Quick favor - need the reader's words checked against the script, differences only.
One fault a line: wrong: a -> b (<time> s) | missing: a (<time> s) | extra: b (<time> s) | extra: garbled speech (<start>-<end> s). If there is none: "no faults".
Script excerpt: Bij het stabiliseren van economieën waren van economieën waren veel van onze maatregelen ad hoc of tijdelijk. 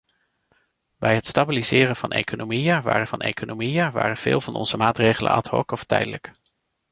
no faults